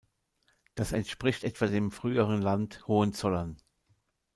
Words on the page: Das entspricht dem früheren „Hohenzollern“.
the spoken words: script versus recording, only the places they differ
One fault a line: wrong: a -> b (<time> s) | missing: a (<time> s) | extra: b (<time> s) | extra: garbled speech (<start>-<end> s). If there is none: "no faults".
extra: etwa (1.4 s)
extra: Land (2.4 s)